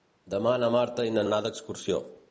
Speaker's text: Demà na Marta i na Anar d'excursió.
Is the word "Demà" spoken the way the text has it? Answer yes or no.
yes